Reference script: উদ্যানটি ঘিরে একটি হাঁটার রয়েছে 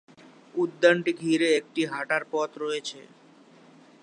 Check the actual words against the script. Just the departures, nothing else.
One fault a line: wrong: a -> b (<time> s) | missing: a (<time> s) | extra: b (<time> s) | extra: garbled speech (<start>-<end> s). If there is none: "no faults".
extra: পথ (2.3 s)